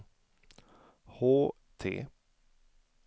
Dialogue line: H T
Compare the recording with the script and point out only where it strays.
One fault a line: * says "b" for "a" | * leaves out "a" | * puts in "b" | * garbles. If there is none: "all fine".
all fine